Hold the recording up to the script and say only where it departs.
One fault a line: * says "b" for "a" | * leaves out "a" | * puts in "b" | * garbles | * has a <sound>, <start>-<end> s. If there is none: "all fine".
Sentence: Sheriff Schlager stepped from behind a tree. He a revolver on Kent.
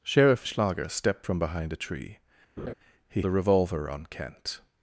* has a laugh, 2.6-2.7 s